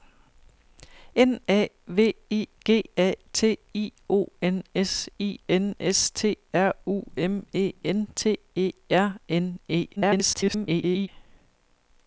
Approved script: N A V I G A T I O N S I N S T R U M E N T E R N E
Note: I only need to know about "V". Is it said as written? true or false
true